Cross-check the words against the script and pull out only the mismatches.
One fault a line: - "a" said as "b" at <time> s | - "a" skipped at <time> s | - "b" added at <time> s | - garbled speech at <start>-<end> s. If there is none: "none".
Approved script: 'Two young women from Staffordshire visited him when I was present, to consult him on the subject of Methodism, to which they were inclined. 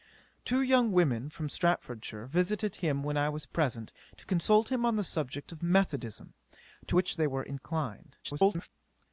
- garbled speech at 8.2-8.7 s